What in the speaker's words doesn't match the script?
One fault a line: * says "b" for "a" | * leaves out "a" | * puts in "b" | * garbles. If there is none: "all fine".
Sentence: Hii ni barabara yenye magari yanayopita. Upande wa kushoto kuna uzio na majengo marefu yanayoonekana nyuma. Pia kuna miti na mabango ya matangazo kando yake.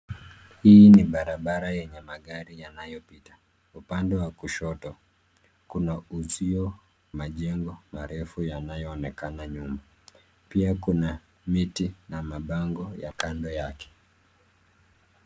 * leaves out "na"
* leaves out "matangazo"